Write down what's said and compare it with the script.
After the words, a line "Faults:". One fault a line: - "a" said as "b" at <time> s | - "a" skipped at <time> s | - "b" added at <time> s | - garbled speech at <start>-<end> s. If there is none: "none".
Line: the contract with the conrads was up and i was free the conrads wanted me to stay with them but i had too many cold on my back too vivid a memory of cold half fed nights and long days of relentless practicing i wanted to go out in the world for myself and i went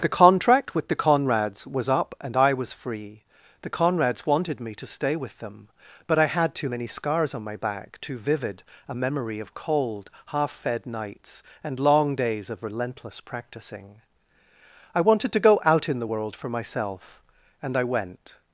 the contract with the conrads was up and i was free the conrads wanted me to stay with them but i had too many scars on my back too vivid a memory of cold half fed nights and long days of relentless practicing i wanted to go out in the world for myself and i went
Faults:
- "cold" said as "scars" at 6.9 s